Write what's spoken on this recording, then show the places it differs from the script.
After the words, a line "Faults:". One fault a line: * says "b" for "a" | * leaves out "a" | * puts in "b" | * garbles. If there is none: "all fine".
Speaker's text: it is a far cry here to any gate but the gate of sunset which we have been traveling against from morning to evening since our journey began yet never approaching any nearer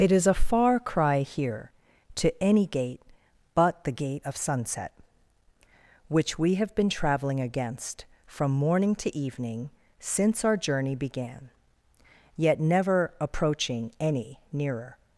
it is a far cry here to any gate but the gate of sunset which we have been traveling against from morning to evening since our journey began yet never approaching any nearer
Faults:
all fine